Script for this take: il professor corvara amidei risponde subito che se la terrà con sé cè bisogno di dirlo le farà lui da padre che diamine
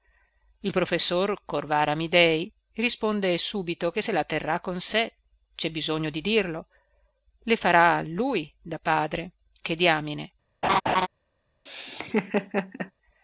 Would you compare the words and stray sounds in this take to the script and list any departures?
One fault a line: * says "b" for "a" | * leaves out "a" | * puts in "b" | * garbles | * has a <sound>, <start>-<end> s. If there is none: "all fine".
* has a laugh, 10.6-11.1 s
* has a laugh, 11.7-12.9 s